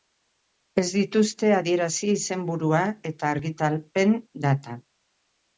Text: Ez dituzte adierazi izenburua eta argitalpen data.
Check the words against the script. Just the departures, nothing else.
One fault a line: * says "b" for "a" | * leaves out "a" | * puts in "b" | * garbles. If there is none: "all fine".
all fine